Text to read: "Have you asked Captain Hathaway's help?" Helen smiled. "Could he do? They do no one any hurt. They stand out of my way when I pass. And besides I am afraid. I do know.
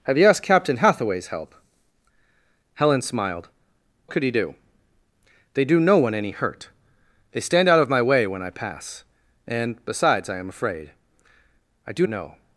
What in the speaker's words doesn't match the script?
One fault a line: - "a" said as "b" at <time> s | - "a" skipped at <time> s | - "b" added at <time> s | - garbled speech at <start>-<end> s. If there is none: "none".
none